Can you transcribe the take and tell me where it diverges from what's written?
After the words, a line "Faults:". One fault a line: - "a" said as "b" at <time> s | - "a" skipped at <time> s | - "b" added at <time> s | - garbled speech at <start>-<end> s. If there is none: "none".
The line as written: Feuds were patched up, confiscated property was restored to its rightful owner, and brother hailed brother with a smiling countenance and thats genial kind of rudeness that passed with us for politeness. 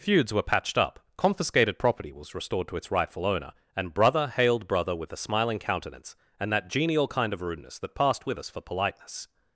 Feuds were patched up, confiscated property was restored to its rightful owner, and brother hailed brother with a smiling countenance and that genial kind of rudeness that passed with us for politeness.
Faults:
- "thats" said as "that" at 6.5 s